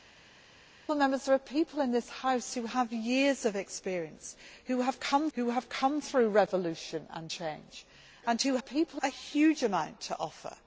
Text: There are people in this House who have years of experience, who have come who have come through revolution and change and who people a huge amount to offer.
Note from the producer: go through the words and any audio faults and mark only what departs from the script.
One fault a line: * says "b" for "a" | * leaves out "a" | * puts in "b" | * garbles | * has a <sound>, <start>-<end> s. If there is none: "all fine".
all fine